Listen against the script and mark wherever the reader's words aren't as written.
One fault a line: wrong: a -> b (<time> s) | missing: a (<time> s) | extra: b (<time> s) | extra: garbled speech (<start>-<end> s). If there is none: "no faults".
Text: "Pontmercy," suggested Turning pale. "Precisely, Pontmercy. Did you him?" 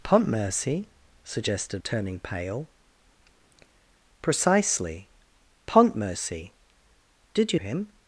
no faults